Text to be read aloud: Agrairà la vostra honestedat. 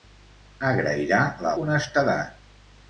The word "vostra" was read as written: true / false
false